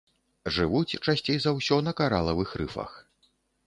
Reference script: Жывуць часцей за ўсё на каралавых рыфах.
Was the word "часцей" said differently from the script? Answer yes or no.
no